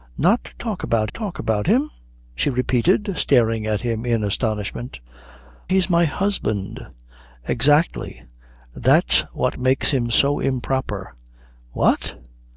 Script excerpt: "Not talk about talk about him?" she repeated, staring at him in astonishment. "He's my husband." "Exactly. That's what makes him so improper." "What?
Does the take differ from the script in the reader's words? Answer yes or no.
no